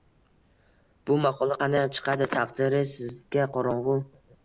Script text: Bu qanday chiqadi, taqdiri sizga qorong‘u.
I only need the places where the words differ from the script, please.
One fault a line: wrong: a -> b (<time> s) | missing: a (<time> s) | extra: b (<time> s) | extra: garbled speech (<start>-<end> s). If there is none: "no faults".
extra: maqola (1.3 s)